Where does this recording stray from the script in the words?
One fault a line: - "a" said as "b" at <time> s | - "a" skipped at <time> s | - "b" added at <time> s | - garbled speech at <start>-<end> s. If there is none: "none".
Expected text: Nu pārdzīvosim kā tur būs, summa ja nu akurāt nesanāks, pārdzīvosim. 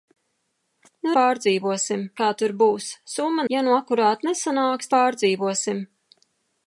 none